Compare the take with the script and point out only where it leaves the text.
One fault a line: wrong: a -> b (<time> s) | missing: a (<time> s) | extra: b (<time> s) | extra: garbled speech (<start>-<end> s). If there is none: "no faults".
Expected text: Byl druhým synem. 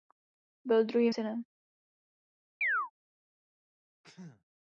no faults